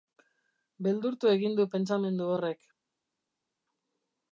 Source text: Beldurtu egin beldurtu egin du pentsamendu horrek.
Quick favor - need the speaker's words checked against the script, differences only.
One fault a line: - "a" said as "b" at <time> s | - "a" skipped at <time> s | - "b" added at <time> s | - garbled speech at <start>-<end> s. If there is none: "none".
- "beldurtu egin" skipped at 1.6 s